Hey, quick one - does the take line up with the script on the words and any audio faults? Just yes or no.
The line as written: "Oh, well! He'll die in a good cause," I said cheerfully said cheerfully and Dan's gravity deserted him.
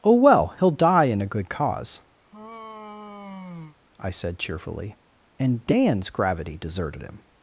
no